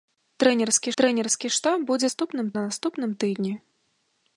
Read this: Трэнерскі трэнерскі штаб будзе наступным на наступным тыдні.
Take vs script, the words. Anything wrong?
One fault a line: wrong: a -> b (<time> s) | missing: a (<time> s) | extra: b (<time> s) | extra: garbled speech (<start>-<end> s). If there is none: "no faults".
no faults